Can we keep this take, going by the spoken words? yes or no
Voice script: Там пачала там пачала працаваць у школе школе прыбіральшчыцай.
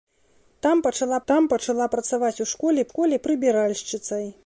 yes